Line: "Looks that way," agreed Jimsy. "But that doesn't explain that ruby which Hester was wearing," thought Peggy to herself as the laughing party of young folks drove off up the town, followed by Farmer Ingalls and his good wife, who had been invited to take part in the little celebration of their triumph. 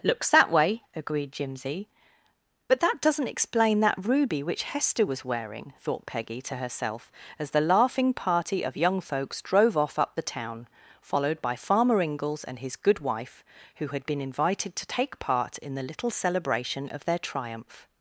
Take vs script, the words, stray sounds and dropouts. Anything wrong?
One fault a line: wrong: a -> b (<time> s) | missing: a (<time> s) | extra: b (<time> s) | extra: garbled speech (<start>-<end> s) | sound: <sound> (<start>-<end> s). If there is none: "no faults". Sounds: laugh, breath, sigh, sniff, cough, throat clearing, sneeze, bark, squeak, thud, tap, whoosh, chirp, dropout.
no faults